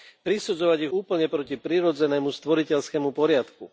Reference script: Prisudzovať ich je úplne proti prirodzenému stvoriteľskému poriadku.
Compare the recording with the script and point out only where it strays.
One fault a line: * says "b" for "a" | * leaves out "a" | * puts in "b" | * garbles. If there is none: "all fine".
all fine